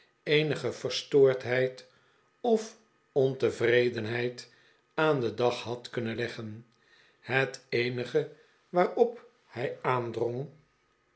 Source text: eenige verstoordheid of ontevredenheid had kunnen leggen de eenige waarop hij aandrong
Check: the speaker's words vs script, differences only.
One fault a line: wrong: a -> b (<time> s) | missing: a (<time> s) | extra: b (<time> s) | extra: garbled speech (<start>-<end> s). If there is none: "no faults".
extra: aan den dag (4.9 s)
wrong: de -> het (7.2 s)